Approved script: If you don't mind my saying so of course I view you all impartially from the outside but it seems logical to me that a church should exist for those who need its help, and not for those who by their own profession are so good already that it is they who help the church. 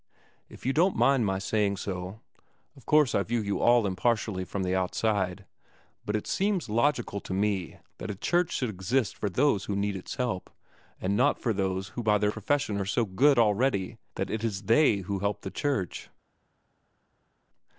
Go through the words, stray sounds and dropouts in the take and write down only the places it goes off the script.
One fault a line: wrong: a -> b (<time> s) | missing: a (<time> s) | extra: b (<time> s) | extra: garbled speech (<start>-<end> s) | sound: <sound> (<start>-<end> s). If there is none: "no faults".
missing: own (12.3 s)